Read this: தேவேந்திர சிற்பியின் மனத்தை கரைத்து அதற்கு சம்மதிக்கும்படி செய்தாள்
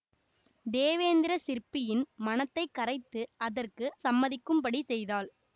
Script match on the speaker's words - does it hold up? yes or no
yes